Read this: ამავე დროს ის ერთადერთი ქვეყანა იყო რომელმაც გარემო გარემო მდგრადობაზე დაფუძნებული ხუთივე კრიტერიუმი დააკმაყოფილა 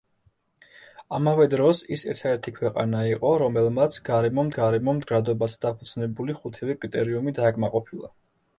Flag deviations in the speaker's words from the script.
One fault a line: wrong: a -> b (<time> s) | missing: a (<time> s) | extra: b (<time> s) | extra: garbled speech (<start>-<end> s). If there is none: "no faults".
no faults